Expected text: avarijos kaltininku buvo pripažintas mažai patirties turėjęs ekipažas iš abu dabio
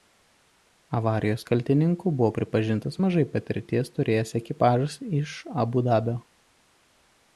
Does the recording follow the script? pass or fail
pass